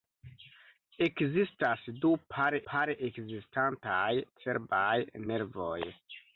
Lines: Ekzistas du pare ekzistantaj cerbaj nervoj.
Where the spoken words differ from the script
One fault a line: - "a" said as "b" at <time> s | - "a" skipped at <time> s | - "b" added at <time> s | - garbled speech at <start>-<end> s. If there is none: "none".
- "pare" added at 2.7 s